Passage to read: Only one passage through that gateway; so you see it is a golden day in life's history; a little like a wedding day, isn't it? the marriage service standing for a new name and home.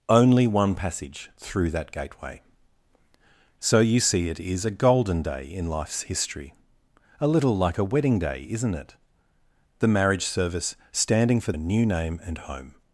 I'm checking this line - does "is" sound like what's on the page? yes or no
yes